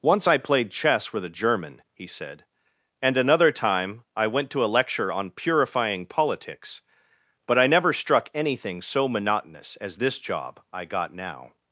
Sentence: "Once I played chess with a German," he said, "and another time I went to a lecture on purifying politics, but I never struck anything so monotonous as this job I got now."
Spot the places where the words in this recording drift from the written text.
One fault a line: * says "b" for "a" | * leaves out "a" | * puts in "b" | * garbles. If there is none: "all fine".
all fine